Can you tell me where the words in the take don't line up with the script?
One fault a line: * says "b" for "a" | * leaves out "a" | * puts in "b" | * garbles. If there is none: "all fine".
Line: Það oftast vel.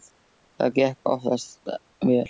* puts in "gekk"